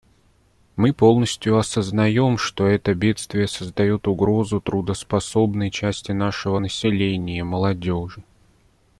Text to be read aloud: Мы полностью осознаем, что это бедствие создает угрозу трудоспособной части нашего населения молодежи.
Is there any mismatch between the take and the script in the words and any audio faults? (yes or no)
no